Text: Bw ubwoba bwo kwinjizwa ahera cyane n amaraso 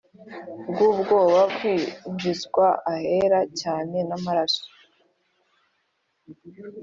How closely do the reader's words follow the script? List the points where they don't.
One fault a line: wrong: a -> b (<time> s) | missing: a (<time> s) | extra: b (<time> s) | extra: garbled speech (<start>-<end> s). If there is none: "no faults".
missing: bwo (1.4 s)